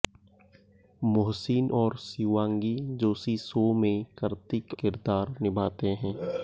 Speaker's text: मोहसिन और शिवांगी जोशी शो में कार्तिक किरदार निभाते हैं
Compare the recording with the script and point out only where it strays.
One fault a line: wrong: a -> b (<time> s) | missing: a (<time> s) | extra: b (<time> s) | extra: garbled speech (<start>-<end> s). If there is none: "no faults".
no faults